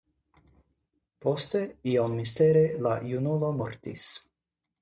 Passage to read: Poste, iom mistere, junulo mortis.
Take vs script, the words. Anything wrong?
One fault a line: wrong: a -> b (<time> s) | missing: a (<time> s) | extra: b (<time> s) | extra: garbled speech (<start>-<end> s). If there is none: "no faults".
extra: la (2.9 s)